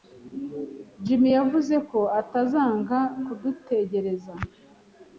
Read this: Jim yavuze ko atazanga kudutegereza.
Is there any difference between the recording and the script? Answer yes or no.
no